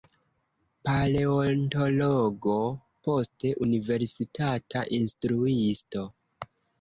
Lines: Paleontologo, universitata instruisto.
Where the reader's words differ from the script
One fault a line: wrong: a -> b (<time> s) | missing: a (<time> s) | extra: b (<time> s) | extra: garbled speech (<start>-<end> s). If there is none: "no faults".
extra: poste (3.1 s)